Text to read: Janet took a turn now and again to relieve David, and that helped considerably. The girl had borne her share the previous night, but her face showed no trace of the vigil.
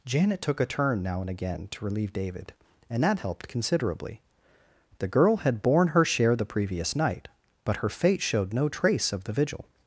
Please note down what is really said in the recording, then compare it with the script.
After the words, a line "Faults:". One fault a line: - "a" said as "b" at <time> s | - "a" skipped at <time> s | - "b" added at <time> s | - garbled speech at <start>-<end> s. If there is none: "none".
Janet took a turn now and again to relieve David, and that helped considerably. The girl had borne her share the previous night, but her fate showed no trace of the vigil.
Faults:
- "face" said as "fate" at 7.9 s